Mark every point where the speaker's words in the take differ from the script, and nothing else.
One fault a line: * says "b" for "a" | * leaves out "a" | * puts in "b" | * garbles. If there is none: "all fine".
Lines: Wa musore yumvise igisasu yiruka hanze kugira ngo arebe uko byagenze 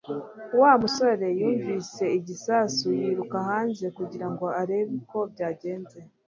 all fine